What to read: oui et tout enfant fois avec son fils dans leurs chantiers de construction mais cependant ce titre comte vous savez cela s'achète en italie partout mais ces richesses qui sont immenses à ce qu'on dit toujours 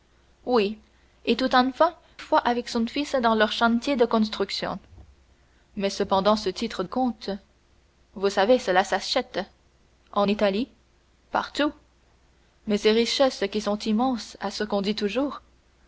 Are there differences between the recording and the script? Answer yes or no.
no